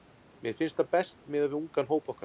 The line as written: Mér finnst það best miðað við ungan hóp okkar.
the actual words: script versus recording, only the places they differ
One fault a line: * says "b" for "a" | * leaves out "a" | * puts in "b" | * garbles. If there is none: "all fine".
all fine